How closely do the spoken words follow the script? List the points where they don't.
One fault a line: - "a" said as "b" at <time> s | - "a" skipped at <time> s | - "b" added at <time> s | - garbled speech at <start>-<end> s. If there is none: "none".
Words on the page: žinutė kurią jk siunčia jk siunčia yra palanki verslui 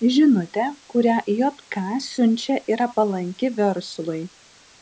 - "jk siunčia" skipped at 2.6 s